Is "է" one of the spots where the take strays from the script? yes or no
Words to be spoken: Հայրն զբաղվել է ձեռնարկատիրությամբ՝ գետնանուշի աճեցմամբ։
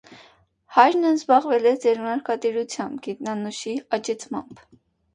no